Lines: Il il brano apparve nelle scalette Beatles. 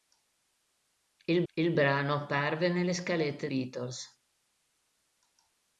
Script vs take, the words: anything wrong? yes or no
no